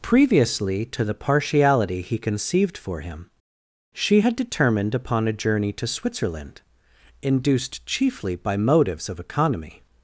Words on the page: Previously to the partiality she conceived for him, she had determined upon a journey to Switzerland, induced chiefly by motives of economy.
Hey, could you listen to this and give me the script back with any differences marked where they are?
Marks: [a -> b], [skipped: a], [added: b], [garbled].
Previously to the partiality [she -> he] conceived for him, she had determined upon a journey to Switzerland, induced chiefly by motives of economy.